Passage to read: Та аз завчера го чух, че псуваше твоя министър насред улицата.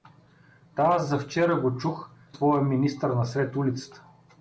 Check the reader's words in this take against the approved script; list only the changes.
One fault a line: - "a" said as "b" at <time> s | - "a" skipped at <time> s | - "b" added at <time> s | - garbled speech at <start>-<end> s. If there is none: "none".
- "че псуваше" skipped at 2.1 s